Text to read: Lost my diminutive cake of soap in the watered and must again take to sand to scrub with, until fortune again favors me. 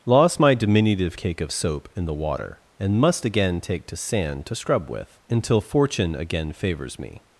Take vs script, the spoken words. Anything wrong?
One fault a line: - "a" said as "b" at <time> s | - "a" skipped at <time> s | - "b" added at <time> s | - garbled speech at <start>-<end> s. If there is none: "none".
- "watered" said as "water" at 2.1 s